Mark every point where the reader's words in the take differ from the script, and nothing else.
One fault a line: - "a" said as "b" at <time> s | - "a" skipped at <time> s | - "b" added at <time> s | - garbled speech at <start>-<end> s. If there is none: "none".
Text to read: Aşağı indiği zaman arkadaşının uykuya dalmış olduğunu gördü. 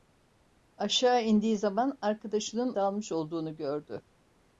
- "uykuya" skipped at 2.7 s